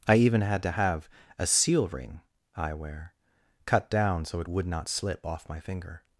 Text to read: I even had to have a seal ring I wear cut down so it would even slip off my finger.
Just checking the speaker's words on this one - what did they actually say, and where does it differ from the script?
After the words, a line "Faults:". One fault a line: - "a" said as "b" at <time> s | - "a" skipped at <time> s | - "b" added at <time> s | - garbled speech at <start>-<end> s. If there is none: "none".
I even had to have a seal ring I wear cut down so it would not slip off my finger.
Faults:
- "even" said as "not" at 4.7 s